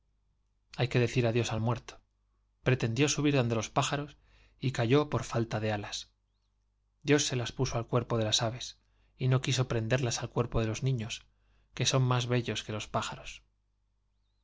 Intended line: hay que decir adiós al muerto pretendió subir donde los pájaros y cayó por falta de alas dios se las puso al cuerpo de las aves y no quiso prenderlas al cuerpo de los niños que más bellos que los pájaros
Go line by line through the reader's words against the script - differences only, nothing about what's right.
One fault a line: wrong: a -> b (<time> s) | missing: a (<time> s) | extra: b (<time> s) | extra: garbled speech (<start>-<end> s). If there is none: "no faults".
extra: son (11.8 s)